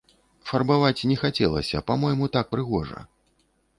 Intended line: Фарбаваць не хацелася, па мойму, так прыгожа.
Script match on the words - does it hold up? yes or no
yes